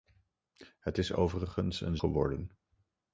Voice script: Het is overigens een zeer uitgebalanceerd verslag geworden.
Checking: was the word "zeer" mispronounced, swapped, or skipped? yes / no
yes